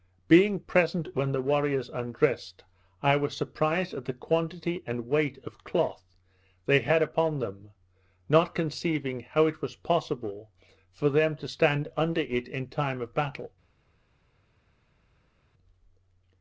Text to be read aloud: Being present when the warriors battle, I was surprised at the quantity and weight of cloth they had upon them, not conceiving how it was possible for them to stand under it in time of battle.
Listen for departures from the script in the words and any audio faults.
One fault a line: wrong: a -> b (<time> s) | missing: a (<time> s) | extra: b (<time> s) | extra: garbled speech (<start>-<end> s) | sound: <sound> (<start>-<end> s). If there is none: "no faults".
wrong: battle -> undressed (1.9 s)